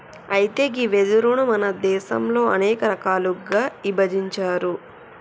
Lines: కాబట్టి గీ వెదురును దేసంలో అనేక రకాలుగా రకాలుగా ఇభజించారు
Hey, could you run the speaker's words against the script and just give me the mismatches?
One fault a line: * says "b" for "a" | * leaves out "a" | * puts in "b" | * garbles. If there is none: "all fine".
* says "అయితే" for "కాబట్టి"
* puts in "మన"
* leaves out "రకాలుగా"